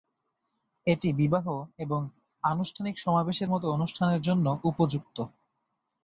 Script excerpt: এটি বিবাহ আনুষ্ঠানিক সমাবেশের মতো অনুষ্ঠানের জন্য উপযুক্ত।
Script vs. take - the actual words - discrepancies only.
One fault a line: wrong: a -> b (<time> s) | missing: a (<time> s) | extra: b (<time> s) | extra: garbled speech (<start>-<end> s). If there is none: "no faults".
extra: এবং (1.8 s)